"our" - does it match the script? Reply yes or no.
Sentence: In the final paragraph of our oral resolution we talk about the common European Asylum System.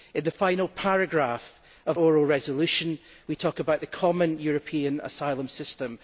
no